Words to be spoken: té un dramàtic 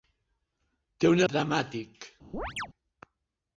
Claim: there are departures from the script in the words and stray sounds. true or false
true